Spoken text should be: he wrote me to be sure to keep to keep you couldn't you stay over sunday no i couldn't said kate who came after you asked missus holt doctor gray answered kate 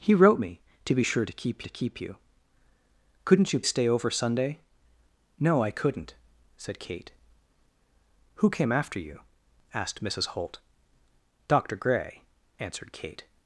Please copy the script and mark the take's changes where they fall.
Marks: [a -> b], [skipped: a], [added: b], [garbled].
he wrote me to be sure to keep to keep you couldn't you stay over sunday no i couldn't said kate who came after you asked missus holt doctor gray answered kate